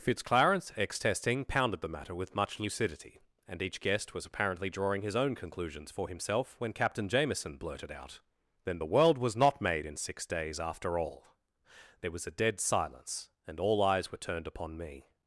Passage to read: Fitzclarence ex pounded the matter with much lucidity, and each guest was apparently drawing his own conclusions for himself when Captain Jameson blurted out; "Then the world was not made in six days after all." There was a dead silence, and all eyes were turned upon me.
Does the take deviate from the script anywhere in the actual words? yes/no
yes